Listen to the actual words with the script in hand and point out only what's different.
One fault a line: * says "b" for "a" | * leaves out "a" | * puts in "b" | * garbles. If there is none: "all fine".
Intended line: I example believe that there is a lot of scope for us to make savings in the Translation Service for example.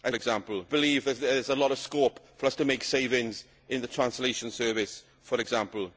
all fine